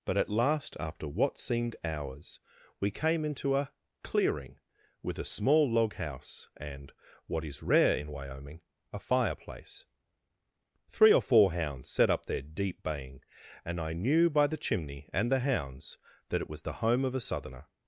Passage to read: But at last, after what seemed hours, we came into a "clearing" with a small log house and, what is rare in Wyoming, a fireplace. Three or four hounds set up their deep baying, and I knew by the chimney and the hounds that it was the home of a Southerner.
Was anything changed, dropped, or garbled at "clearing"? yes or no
no